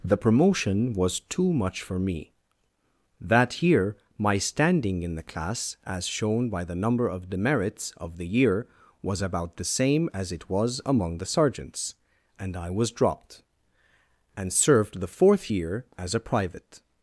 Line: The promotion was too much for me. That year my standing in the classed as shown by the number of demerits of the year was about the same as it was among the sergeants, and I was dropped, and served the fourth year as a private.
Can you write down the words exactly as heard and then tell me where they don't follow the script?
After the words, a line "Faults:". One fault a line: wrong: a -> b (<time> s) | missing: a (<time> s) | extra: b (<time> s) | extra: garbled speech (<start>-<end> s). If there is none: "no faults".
The promotion was too much for me. That year my standing in the class as shown by the number of demerits of the year was about the same as it was among the sergeants, and I was dropped, and served the fourth year as a private.
Faults:
wrong: classed -> class (5.2 s)